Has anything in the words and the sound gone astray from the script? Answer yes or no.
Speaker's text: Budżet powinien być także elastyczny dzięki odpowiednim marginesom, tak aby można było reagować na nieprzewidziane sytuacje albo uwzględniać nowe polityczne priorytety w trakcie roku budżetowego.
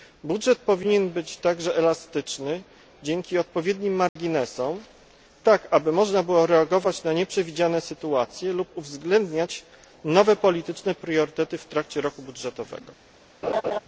yes